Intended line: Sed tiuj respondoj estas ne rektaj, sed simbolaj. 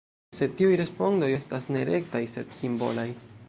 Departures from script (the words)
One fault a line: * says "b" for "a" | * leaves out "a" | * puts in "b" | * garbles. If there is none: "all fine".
all fine